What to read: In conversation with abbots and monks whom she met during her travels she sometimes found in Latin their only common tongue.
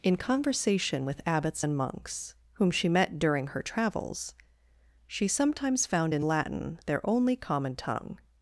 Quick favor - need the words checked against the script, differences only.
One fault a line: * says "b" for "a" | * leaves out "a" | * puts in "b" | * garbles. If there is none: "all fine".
all fine